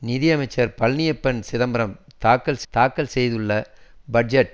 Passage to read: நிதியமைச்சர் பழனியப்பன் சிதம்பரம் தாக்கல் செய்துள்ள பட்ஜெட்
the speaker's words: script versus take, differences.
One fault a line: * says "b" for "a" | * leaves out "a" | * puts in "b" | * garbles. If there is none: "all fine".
* puts in "தாக்கல்"